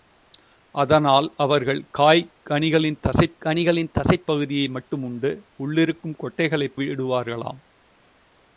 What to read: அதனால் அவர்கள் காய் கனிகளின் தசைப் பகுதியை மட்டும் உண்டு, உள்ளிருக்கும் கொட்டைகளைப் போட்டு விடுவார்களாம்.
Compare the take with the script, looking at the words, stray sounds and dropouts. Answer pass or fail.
fail